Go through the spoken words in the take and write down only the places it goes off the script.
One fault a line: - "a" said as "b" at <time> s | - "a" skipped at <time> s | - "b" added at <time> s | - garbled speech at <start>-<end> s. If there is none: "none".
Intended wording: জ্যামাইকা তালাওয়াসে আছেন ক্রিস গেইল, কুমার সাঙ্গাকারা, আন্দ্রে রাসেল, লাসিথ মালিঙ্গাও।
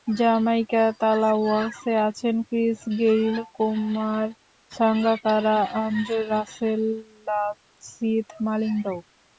none